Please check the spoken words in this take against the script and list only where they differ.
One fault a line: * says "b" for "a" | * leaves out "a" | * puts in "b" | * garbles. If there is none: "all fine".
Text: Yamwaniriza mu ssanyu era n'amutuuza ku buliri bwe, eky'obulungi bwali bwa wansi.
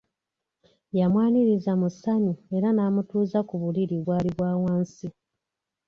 * leaves out "bwe eky'obulungi"